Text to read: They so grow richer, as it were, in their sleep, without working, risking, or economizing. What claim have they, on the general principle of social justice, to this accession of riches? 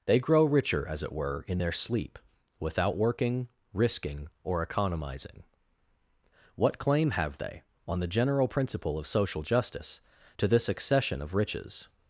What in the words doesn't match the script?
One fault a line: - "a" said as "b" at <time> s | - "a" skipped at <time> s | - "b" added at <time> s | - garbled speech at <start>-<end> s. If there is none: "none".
- "so" skipped at 0.2 s